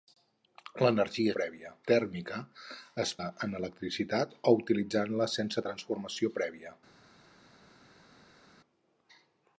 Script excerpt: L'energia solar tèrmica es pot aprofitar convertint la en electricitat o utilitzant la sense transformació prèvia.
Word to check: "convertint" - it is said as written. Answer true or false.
false